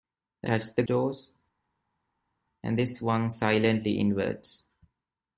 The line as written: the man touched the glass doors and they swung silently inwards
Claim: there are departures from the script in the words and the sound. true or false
true